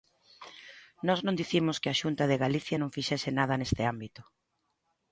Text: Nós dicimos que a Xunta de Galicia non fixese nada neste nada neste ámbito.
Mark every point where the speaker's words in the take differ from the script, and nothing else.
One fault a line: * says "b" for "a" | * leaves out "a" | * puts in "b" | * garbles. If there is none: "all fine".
* puts in "non"
* leaves out "nada neste"